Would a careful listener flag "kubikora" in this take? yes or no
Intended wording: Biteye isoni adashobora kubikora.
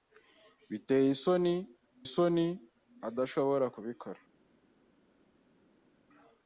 no